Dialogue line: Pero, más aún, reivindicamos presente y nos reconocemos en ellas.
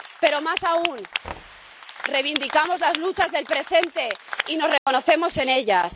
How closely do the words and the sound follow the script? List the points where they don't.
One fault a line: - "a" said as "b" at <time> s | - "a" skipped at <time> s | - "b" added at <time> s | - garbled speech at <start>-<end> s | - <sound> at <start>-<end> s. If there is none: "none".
- thud at 1.2-1.7 s
- "las luchas del" added at 2.8 s
- dropout at 4.8-4.9 s